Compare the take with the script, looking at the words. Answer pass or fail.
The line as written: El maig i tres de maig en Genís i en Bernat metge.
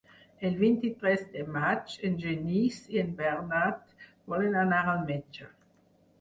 fail